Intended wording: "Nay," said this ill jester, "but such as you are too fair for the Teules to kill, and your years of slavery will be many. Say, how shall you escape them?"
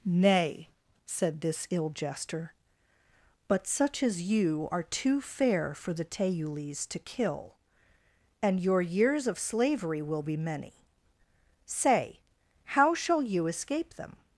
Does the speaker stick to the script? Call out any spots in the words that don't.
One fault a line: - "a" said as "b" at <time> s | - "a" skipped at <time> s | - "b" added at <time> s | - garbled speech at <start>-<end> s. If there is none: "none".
none